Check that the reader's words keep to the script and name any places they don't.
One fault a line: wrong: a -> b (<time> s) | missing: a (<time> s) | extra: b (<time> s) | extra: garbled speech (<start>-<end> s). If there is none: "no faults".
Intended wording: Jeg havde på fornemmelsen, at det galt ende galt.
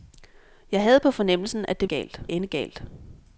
no faults